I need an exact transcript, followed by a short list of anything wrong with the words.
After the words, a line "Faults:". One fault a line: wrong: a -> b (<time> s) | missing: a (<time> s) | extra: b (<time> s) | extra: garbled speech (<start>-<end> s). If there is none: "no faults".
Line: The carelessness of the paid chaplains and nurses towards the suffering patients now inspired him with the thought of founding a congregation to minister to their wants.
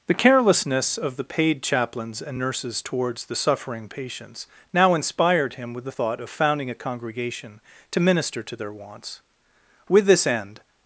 The carelessness of the paid chaplains and nurses towards the suffering patients now inspired him with the thought of founding a congregation to minister to their wants. With this end
Faults:
extra: With this end (9.9 s)